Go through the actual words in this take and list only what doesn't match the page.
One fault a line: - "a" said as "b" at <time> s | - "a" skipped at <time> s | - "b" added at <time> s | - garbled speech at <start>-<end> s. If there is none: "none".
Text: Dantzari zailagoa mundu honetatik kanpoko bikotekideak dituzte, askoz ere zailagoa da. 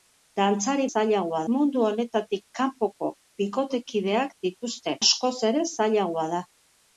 none